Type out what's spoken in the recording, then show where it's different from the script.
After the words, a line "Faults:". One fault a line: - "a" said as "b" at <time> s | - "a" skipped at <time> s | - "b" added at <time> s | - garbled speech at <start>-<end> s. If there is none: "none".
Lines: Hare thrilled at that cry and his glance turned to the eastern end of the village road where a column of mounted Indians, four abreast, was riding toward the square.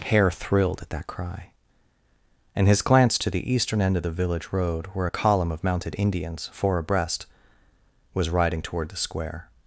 Hare thrilled at that cry and his glance to the eastern end of the village road where a column of mounted Indians, four abreast, was riding toward the square.
Faults:
- "turned" skipped at 3.2 s